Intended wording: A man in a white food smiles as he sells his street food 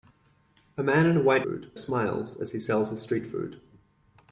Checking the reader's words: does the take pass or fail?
pass